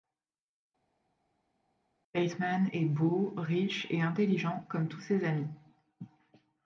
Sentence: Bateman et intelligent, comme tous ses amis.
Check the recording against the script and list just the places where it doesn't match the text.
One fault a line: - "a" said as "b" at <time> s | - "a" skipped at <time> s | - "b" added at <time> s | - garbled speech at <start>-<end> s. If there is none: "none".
- "est beau riche" added at 2.7 s